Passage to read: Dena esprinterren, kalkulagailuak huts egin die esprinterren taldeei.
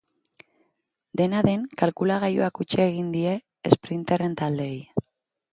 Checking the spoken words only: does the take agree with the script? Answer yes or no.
no